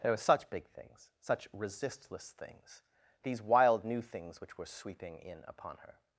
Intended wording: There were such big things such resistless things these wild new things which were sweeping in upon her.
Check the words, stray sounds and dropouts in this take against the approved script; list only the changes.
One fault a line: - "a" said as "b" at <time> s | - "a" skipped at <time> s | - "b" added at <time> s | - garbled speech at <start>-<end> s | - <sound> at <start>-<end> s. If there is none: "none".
none